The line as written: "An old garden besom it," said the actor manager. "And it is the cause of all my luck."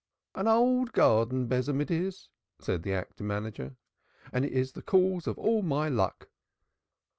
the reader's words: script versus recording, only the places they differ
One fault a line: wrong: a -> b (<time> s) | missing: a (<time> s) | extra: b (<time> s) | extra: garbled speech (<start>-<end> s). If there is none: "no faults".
extra: is (1.9 s)